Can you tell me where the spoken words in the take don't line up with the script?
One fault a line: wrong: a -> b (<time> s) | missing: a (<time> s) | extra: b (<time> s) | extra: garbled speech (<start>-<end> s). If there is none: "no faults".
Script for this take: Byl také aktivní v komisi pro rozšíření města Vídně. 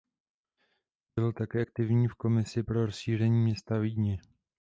no faults